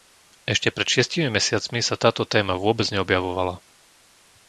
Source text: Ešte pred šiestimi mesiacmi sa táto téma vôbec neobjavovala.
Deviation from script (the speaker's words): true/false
false